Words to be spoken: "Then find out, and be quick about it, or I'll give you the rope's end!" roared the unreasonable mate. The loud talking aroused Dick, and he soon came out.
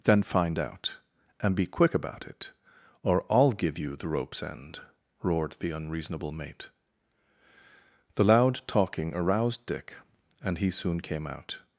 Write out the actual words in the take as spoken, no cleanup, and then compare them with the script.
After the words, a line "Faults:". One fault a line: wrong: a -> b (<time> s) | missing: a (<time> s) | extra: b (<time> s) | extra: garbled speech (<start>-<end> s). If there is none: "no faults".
"Then find out, and be quick about it, or I'll give you the rope's end!" roared the unreasonable mate. The loud talking aroused Dick, and he soon came out.
Faults:
no faults